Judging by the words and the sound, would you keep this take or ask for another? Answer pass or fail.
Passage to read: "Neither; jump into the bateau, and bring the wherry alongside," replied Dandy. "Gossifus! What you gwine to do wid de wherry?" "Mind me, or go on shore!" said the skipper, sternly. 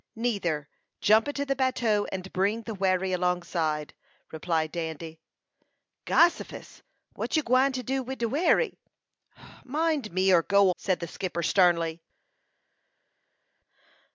fail